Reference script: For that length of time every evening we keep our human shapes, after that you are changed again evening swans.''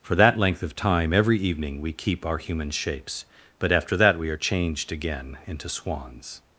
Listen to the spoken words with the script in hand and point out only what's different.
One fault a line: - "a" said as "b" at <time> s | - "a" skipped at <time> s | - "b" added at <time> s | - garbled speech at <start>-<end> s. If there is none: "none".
- "but" added at 3.6 s
- "you" said as "we" at 4.2 s
- "evening" said as "into" at 5.5 s